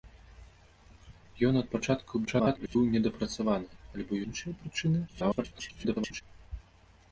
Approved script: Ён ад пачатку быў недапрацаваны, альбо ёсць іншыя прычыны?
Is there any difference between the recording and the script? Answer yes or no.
yes